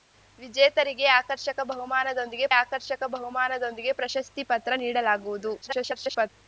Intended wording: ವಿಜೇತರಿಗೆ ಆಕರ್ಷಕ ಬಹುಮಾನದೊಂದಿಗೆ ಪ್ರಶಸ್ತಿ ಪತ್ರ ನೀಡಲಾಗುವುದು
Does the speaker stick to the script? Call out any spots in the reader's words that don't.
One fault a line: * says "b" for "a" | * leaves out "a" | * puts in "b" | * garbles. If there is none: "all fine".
* puts in "ಆಕರ್ಷಕ ಬಹುಮಾನದೊಂದಿಗೆ"
* garbles